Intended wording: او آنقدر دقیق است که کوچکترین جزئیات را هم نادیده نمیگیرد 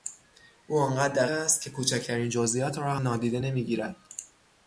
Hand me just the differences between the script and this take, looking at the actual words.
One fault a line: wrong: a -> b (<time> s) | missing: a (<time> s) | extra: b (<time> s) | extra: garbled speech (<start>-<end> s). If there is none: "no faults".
missing: دقیق (1.2 s)
missing: هم (3.0 s)